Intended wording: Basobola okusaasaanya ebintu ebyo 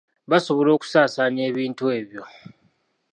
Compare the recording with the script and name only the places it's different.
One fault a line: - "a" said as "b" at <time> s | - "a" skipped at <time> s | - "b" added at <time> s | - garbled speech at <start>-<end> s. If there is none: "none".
none